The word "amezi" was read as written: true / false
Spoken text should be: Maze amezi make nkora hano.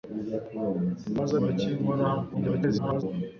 false